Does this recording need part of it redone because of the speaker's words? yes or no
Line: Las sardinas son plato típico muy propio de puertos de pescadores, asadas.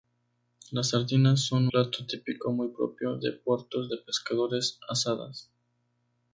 no